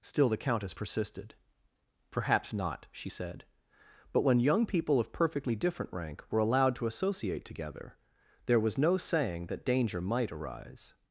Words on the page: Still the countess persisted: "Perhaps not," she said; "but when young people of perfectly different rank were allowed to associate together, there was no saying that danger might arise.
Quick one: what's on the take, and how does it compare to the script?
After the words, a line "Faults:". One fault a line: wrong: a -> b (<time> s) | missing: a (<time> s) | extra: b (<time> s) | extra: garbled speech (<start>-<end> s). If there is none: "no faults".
Still the countess persisted: "Perhaps not," she said; "but when young people of perfectly different rank were allowed to associate together, there was no saying that danger might arise.
Faults:
no faults